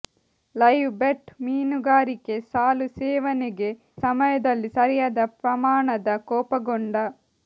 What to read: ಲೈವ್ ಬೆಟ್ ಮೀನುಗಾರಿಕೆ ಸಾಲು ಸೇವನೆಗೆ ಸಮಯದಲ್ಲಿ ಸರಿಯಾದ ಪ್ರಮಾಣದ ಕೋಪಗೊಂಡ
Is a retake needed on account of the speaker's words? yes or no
no